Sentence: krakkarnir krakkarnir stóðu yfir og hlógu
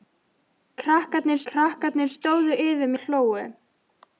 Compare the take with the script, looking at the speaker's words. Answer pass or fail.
pass